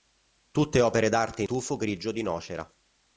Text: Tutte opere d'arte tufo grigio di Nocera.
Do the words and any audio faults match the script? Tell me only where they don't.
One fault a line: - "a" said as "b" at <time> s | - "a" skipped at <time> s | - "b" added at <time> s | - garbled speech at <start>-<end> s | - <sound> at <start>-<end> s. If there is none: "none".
none